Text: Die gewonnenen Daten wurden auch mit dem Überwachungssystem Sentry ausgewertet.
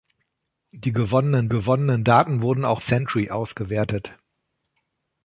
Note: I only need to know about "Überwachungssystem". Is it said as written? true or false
false